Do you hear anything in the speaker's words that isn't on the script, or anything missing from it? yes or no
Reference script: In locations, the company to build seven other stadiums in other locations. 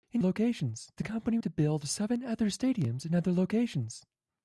no